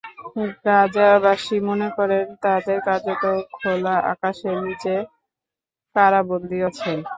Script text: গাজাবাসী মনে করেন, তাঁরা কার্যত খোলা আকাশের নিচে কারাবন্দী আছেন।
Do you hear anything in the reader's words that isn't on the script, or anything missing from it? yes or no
no